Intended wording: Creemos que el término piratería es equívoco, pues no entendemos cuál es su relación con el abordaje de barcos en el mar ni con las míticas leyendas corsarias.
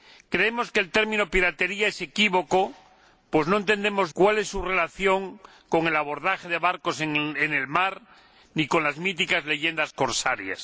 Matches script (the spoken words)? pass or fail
pass